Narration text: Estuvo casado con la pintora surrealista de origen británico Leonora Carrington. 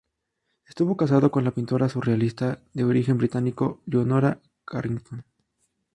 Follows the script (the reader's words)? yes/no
yes